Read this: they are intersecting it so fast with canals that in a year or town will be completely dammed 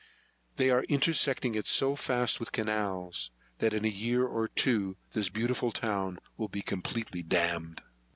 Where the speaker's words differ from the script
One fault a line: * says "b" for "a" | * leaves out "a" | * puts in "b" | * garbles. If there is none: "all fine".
* puts in "two this beautiful"